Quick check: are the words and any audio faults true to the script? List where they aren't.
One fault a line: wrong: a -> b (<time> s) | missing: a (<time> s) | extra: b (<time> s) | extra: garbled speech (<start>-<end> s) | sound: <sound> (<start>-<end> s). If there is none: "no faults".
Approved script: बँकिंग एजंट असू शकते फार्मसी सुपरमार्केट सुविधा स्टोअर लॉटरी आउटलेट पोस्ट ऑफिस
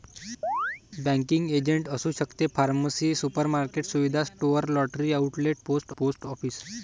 sound: chirp (0.4-0.8 s)
extra: पोस्ट (6.0 s)